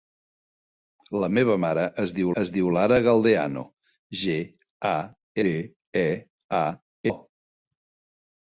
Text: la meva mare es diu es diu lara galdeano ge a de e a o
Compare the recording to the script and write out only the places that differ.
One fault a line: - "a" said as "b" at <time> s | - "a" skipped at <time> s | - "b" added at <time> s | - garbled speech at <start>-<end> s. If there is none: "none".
none